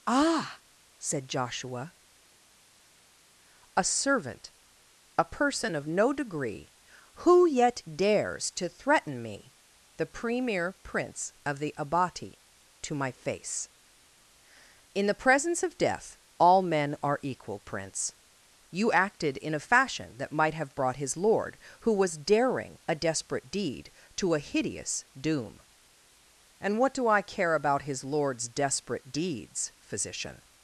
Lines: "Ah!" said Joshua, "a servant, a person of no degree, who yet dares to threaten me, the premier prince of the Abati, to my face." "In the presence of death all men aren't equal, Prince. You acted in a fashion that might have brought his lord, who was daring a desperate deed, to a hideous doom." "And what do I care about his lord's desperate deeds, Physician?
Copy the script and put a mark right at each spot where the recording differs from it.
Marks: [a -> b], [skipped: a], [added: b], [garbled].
"Ah!" said Joshua, "a servant, a person of no degree, who yet dares to threaten me, the premier prince of the Abati, to my face." "In the presence of death all men [aren't -> are] equal, Prince. You acted in a fashion that might have brought his lord, who was daring a desperate deed, to a hideous doom." "And what do I care about his lord's desperate deeds, Physician?